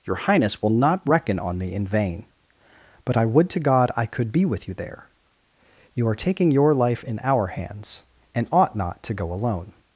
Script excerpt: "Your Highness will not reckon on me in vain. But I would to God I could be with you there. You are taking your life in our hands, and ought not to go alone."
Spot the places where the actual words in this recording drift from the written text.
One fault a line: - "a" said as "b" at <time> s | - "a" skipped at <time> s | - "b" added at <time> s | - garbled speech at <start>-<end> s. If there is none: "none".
none